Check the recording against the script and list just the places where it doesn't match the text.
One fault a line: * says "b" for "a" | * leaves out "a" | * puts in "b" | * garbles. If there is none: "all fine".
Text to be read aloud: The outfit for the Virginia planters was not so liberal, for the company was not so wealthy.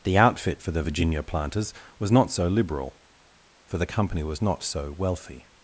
all fine